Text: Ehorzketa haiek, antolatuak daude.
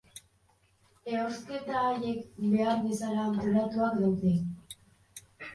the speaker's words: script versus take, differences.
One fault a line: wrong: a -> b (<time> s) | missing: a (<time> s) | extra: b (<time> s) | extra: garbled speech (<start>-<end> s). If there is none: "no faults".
extra: behar bezala (2.5 s)